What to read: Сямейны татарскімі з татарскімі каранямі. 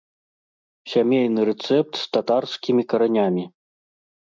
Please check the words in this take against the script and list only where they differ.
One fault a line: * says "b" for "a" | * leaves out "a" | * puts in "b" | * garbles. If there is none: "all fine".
* says "рэцэпт" for "татарскімі"